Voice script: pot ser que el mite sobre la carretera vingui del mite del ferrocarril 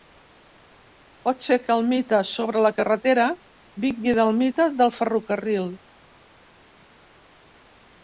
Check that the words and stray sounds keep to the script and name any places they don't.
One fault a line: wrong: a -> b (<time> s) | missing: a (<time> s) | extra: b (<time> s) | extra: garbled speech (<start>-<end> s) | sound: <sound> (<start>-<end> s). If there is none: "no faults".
no faults